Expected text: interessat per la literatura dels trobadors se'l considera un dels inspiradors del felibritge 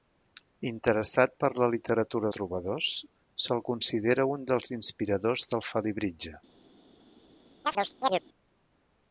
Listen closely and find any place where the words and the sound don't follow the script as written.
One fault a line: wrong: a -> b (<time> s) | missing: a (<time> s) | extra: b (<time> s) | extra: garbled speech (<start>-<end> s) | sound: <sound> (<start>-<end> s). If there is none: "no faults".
missing: dels (2.3 s)
sound: chirp (7.6-8.2 s)